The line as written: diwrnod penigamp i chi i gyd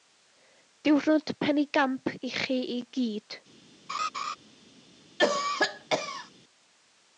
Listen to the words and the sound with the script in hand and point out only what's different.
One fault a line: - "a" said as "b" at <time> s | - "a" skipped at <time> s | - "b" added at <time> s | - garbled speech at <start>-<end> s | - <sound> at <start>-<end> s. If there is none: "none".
- laugh at 3.9-4.4 s
- cough at 5.2-6.3 s